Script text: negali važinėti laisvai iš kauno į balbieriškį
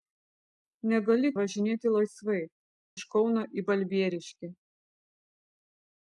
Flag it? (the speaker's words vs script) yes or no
no